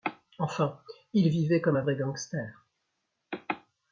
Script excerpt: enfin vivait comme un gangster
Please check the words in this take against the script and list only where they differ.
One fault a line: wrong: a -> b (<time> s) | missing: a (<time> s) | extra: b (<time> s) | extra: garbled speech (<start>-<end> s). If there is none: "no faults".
extra: il (1.1 s)
extra: vrai (1.8 s)